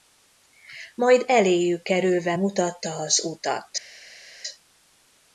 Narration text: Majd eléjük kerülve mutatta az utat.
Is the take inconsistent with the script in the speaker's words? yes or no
no